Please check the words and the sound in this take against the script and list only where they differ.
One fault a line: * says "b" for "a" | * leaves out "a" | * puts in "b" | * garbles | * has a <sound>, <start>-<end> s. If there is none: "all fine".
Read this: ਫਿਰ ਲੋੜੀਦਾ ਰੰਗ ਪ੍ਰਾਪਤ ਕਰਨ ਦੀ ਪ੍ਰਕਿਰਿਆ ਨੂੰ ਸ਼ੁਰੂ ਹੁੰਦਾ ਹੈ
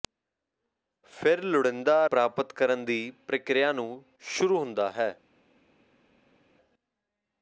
* leaves out "ਰੰਗ"